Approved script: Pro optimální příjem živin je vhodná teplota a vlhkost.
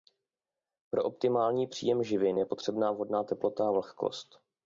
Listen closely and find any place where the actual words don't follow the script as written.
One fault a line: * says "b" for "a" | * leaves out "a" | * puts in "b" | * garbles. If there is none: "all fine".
* puts in "potřebná"